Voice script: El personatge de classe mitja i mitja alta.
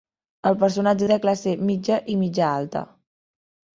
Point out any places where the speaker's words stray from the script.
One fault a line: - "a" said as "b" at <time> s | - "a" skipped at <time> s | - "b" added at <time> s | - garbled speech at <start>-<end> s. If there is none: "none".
none